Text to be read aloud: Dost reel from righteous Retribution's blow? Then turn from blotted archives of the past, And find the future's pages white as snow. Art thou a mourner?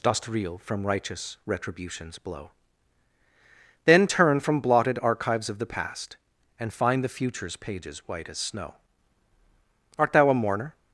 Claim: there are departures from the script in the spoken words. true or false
false